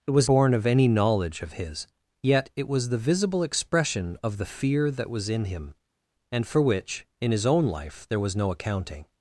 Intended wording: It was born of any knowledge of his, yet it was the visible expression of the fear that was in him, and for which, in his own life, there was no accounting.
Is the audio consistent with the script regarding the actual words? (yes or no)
yes